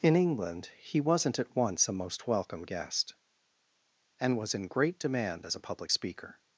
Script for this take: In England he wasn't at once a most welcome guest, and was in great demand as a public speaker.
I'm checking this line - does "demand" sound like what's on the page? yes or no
yes